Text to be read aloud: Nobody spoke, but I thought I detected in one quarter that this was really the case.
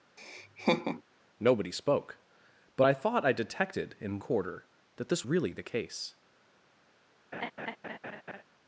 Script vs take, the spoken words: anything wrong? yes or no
yes